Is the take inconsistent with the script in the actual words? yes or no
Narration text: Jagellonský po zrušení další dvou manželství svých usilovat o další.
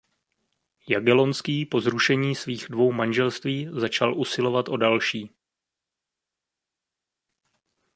yes